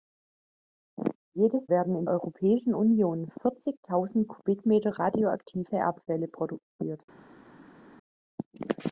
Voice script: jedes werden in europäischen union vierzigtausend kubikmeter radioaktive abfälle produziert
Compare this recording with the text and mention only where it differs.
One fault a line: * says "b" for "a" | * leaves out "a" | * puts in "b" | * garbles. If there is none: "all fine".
all fine